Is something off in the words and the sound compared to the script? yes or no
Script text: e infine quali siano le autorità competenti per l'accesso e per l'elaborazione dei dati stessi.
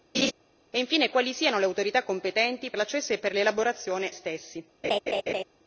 yes